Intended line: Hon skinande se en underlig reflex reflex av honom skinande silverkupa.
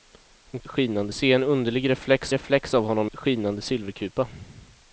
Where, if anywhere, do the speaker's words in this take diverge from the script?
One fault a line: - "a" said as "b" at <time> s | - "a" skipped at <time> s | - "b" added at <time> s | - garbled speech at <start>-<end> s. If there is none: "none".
none